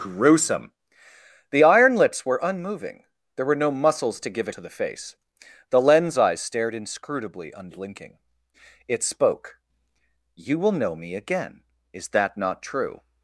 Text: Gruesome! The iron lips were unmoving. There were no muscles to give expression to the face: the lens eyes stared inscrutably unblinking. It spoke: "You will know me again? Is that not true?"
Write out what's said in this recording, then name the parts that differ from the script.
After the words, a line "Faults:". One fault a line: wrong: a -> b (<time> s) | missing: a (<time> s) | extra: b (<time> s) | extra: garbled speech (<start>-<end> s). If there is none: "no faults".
Gruesome! The iron lips were unmoving. There were no muscles to give to the face: the lens eyes stared inscrutably unblinking. It spoke: "You will know me again? Is that not true?"
Faults:
missing: expression (4.5 s)